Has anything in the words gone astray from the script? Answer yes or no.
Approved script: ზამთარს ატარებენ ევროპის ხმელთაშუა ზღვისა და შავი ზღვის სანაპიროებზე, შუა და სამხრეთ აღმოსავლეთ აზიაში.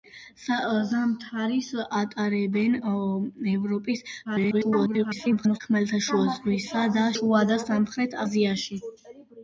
yes